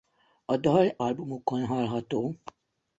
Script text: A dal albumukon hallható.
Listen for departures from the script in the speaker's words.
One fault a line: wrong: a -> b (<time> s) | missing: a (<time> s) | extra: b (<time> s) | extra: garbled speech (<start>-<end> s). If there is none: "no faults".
no faults